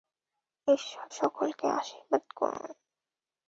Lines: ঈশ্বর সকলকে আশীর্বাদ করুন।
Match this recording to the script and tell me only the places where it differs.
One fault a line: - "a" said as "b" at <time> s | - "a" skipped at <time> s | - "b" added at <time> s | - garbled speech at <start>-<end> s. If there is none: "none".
none